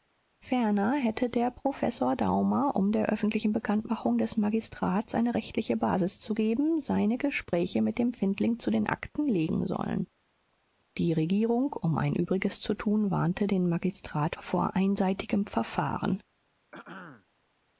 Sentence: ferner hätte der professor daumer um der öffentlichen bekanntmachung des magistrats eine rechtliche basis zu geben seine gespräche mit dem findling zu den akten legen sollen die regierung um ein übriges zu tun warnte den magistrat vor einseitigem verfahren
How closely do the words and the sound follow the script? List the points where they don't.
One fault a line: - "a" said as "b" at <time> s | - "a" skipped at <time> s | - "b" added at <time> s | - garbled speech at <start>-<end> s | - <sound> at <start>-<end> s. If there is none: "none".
- throat clearing at 16.7-17.3 s